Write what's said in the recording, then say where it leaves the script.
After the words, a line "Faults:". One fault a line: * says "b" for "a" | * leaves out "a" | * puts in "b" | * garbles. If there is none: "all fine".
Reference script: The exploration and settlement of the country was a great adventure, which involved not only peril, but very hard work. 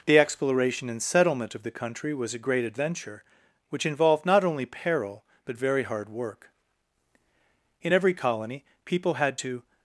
The exploration and settlement of the country was a great adventure, which involved not only peril, but very hard work. In every colony people had to
Faults:
* puts in "In every colony people had to"